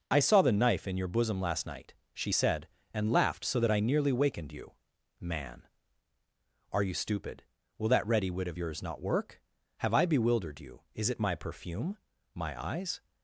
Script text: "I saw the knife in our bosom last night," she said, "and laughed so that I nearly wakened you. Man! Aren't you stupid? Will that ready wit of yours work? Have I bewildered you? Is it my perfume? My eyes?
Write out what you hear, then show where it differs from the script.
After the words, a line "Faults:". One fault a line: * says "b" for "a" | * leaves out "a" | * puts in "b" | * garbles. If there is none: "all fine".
"I saw the knife in your bosom last night," she said, "and laughed so that I nearly wakened you. Man! Are you stupid? Will that ready wit of yours not work? Have I bewildered you? Is it my perfume? My eyes?
Faults:
* says "your" for "our"
* says "Are" for "Aren't"
* puts in "not"